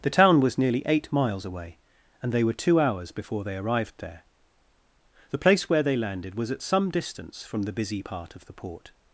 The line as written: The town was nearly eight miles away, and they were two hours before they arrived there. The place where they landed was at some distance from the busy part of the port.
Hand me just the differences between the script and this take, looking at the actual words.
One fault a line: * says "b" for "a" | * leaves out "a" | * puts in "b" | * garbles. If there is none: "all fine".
all fine